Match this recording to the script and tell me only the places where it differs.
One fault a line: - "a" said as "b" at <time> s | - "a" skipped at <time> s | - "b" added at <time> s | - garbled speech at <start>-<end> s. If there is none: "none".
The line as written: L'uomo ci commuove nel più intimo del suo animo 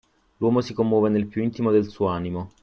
- "ci" said as "si" at 0.6 s